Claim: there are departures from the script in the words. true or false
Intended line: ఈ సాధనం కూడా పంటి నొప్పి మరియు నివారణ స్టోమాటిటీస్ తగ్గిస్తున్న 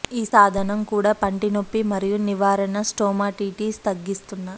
false